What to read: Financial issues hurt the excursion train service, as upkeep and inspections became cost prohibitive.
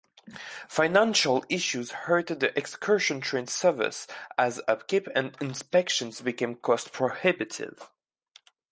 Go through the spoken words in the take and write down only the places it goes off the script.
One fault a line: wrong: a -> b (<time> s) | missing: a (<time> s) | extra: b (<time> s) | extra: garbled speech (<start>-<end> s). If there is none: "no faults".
no faults